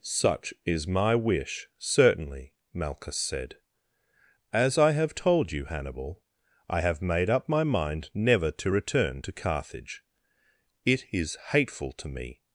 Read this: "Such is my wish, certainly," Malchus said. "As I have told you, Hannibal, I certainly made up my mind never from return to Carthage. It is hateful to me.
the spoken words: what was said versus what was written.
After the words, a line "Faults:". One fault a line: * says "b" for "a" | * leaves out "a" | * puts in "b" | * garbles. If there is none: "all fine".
"Such is my wish, certainly," Malchus said. "As I have told you, Hannibal, I have made up my mind never to return to Carthage. It is hateful to me.
Faults:
* says "have" for "certainly"
* says "to" for "from"